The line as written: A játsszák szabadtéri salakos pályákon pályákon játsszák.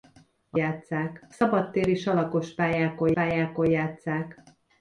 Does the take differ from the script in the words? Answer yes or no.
no